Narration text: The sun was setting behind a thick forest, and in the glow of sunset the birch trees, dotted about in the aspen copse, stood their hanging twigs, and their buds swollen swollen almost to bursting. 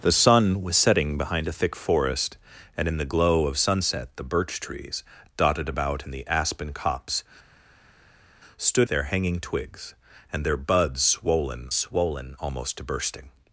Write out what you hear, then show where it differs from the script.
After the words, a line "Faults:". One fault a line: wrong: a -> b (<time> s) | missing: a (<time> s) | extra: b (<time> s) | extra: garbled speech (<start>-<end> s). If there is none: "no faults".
The sun was setting behind a thick forest, and in the glow of sunset the birch trees, dotted about in the aspen copse, stood their hanging twigs, and their buds swollen swollen almost to bursting.
Faults:
no faults